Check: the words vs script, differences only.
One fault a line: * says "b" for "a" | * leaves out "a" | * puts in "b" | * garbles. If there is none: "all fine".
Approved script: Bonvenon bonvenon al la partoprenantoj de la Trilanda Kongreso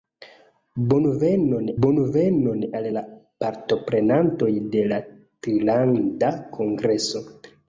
all fine